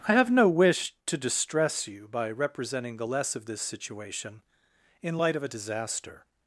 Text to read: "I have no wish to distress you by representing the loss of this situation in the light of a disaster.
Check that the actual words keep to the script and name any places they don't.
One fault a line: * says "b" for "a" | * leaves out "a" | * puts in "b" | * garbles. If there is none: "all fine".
* says "less" for "loss"
* leaves out "the"